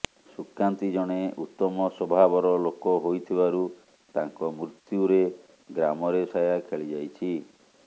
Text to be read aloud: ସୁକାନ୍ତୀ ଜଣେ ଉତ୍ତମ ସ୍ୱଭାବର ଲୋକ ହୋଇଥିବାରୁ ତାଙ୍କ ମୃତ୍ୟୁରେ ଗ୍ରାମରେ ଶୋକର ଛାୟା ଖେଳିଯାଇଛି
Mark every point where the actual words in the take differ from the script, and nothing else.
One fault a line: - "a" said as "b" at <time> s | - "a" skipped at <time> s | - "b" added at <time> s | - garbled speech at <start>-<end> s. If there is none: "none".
- "ଶୋକର" skipped at 6.2 s